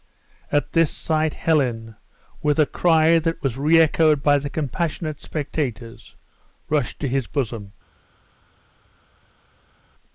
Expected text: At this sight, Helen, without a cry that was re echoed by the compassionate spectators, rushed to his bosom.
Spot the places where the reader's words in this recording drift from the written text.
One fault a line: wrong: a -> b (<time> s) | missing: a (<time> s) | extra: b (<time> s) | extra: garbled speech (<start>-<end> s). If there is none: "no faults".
wrong: without -> with (2.4 s)